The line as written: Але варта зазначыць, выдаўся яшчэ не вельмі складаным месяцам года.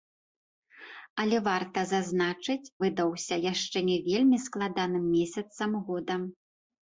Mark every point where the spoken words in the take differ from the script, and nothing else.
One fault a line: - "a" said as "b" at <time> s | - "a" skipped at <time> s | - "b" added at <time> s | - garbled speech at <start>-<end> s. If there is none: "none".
none